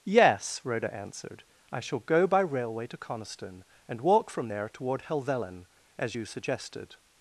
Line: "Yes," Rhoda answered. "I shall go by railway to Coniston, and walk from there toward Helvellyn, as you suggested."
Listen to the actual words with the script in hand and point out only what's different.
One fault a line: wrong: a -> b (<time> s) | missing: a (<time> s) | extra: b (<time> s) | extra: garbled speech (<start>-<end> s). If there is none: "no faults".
no faults